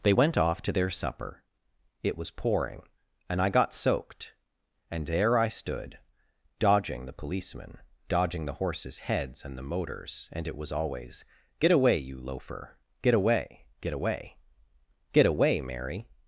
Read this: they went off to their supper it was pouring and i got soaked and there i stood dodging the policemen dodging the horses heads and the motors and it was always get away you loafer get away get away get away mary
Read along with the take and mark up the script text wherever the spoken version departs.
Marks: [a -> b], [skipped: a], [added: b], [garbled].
they went off to their supper it was pouring and i got soaked and there i stood dodging the policemen dodging the horses heads and the motors and it was always get away you loafer get away get away get away mary